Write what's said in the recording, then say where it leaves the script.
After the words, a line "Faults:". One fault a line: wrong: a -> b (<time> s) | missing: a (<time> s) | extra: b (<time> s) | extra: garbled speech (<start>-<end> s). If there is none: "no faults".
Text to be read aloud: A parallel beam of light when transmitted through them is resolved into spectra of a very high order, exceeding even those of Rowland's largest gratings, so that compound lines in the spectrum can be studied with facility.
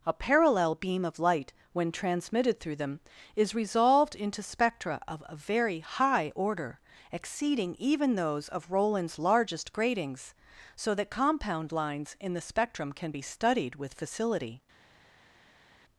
A parallel beam of light when transmitted through them is resolved into spectra of a very high order, exceeding even those of Rowland's largest gratings, so that compound lines in the spectrum can be studied with facility.
Faults:
no faults